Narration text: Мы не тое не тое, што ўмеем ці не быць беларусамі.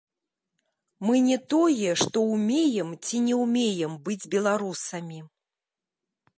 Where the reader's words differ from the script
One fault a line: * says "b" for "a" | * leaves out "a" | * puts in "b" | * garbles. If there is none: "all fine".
* leaves out "не тое"
* puts in "ўмеем"